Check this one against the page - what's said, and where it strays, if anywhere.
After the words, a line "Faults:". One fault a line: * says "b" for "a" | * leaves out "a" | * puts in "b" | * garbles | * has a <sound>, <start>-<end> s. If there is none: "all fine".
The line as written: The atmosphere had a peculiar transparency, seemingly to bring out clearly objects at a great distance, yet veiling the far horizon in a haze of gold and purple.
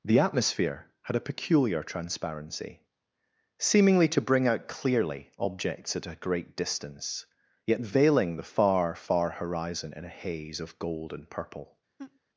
The atmosphere had a peculiar transparency, seemingly to bring out clearly objects at a great distance, yet veiling the far far horizon in a haze of gold and purple.
Faults:
* puts in "far"
* has a laugh, 12.0-12.2 s